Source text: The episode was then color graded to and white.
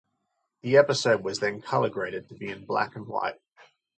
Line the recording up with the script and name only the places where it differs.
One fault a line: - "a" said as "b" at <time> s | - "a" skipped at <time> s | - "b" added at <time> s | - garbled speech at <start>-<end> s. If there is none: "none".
- "be in black" added at 2.4 s